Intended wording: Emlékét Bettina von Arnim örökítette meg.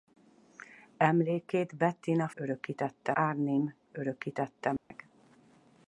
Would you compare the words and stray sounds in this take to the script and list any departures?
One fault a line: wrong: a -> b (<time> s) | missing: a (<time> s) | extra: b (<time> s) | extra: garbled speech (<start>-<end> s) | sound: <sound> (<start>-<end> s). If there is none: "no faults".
wrong: von -> örökítette (2.3 s)
sound: dropout (4.8-4.9 s)